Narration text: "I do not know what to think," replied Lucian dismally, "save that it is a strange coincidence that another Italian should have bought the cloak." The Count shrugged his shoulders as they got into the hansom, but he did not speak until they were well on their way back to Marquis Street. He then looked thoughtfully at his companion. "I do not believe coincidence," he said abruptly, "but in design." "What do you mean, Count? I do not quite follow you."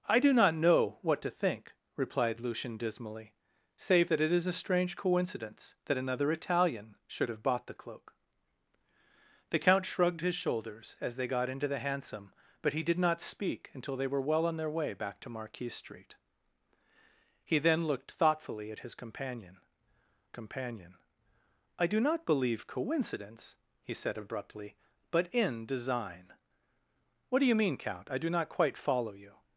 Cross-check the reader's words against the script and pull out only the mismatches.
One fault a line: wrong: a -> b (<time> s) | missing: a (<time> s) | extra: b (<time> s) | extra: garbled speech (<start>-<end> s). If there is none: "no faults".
extra: companion (20.3 s)